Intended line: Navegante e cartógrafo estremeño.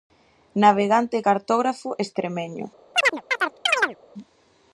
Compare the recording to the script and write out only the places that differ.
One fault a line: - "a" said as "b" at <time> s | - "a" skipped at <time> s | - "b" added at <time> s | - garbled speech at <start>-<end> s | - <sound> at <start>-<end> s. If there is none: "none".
- chirp at 2.9-4.0 s